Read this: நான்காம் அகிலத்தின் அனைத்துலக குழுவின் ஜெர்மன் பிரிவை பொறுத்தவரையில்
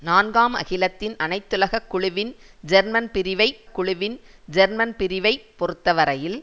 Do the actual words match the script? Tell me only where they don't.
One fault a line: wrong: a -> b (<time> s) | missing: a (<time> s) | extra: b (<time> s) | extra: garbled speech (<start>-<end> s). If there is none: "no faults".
extra: குழுவின் ஜெர்மன் பிரிவை (3.7 s)